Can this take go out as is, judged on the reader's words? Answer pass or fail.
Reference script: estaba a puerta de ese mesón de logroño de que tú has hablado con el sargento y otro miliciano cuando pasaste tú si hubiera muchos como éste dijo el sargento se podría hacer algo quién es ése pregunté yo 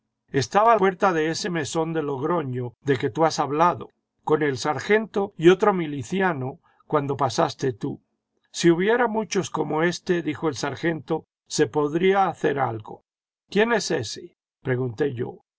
pass